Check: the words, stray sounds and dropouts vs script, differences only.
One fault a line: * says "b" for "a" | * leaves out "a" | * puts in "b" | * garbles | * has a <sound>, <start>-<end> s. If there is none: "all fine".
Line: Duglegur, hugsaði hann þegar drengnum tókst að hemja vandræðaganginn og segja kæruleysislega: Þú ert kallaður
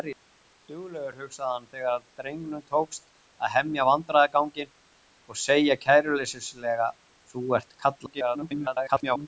* garbles